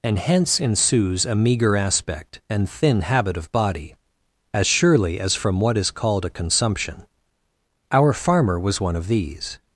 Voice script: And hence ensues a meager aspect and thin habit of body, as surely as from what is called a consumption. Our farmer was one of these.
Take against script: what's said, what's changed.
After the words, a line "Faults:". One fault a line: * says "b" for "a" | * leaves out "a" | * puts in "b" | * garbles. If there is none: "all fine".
And hence ensues a meager aspect and thin habit of body, as surely as from what is called a consumption. Our farmer was one of these.
Faults:
all fine